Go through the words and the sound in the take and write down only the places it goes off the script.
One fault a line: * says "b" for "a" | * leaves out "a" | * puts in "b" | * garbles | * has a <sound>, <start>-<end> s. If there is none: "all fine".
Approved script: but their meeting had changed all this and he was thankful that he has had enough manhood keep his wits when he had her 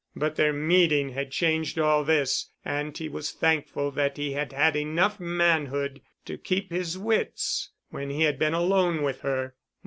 * says "had" for "has"
* puts in "to"
* puts in "been alone with"